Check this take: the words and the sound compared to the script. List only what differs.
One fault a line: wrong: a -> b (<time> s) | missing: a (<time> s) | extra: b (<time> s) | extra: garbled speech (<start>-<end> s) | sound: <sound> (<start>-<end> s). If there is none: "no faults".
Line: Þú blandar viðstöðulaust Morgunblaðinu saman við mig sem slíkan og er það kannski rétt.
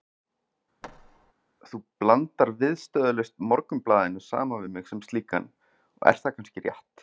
sound: thud (0.8-1.3 s)